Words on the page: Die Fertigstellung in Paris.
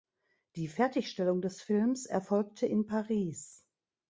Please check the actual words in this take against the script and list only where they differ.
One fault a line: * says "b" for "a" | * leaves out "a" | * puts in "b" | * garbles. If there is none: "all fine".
* puts in "des Films erfolgte"